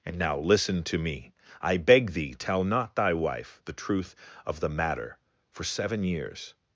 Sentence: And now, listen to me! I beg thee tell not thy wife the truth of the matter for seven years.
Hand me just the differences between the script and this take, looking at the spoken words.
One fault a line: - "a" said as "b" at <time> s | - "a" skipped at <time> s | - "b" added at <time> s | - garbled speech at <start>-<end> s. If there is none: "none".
none